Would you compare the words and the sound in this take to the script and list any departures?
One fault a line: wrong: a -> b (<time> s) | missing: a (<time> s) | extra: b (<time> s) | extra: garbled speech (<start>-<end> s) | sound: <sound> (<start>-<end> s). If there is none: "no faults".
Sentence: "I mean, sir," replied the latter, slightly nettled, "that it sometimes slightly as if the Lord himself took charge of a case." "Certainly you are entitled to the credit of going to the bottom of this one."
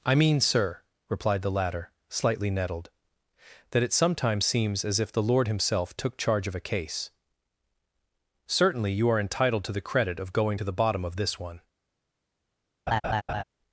wrong: slightly -> seems (4.5 s)
sound: laugh (12.9-13.4 s)